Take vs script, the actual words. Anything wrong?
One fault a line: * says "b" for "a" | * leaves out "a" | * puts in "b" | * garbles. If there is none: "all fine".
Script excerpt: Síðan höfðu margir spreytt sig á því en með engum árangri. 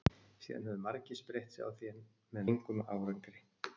all fine